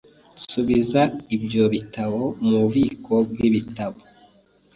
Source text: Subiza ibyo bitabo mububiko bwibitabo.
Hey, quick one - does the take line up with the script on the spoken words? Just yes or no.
yes